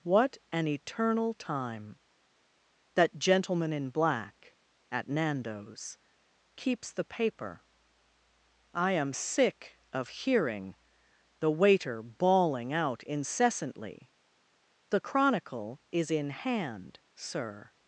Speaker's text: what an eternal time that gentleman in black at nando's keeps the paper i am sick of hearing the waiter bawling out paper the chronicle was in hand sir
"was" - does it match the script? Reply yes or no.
no